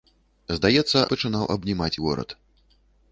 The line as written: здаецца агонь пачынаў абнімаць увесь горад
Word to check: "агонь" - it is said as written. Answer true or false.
false